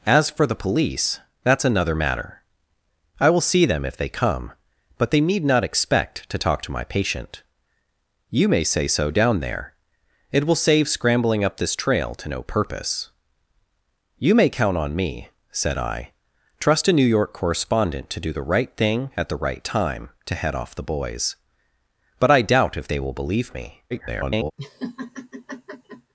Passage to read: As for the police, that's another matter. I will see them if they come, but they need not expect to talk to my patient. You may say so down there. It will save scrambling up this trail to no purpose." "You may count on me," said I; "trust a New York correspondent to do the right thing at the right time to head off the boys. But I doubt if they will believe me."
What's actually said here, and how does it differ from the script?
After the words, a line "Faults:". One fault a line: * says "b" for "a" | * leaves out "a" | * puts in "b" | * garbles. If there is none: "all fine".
As for the police, that's another matter. I will see them if they come, but they need not expect to talk to my patient. You may say so down there. It will save scrambling up this trail to no purpose." "You may count on me," said I; "trust a New York correspondent to do the right thing at the right time to head off the boys. But I doubt if they will believe me." [garbled]
Faults:
* garbles